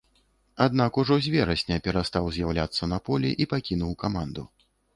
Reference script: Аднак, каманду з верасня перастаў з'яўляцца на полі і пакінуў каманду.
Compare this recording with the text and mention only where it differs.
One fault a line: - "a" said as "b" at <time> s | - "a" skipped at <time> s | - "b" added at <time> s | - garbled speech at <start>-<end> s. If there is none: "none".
- "каманду" said as "ужо" at 1.0 s